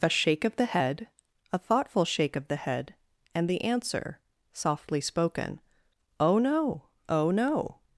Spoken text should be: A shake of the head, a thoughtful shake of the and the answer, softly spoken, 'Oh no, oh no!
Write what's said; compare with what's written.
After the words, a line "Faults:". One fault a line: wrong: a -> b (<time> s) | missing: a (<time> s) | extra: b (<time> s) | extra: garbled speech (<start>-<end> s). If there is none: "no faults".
A shake of the head, a thoughtful shake of the head, and the answer, softly spoken, 'Oh no, oh no!
Faults:
extra: head (2.5 s)